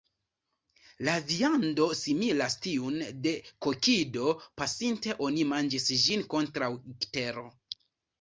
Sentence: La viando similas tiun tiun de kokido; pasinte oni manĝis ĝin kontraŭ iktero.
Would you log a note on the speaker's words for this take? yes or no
yes